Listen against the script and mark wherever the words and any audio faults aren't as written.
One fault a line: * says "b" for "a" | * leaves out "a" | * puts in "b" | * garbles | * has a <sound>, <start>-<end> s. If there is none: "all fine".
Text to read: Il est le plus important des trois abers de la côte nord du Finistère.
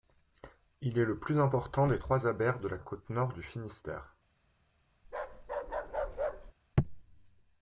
* has a bark, 5.0-6.5 s